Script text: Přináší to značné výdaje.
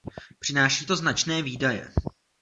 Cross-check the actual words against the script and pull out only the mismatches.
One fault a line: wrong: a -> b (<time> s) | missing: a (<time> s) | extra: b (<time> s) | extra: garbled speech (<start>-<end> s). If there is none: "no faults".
no faults